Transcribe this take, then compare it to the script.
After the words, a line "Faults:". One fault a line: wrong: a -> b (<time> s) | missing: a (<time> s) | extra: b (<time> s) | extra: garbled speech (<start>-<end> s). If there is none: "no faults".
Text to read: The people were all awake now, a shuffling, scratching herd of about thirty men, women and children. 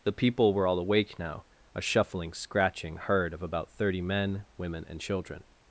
The people were all awake now, a shuffling, scratching herd of about thirty men, women and children.
Faults:
no faults